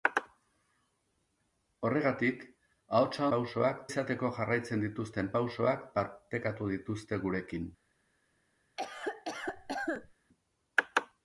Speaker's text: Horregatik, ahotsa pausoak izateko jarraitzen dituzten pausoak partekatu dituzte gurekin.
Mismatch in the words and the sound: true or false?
true